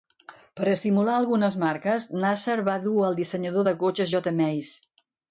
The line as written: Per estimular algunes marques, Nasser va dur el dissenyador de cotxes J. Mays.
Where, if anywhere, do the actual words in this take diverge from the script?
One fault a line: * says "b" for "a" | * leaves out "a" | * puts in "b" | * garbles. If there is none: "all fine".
all fine